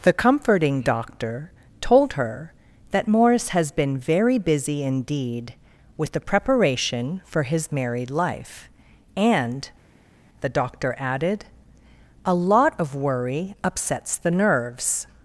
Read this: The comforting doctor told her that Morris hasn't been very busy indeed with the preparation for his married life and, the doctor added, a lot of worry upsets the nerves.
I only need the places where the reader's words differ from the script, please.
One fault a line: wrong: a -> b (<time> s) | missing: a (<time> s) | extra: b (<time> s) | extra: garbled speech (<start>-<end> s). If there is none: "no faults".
wrong: hasn't -> has (3.5 s)